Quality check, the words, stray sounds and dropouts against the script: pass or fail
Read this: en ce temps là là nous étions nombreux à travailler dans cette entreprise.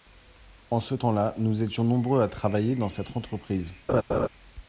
fail